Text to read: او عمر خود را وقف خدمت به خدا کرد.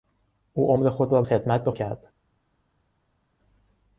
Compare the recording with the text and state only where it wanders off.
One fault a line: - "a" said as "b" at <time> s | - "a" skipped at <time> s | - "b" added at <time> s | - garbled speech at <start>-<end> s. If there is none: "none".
- "وقف" skipped at 1.2 s
- "خدا" skipped at 1.7 s